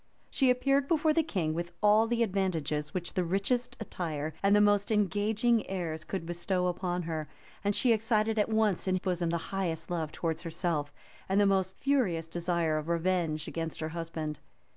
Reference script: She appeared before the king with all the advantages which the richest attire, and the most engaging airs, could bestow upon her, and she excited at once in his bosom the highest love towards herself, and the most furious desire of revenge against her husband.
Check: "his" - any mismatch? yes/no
yes